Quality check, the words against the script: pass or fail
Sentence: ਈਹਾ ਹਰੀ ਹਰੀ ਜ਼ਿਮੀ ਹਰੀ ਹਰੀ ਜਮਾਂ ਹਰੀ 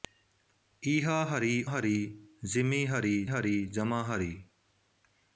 pass